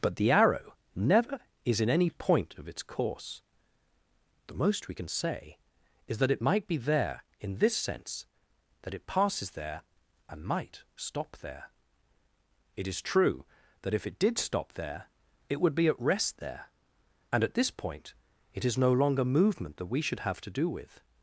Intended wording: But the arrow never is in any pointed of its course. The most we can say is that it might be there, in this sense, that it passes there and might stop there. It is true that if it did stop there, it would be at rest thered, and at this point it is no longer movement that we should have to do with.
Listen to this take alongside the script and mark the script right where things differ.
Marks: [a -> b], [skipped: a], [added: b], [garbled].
But the arrow never is in any [pointed -> point] of its course. The most we can say is that it might be there, in this sense, that it passes there and might stop there. It is true that if it did stop there, it would be at rest [thered, -> there] and at this point it is no longer movement that we should have to do with.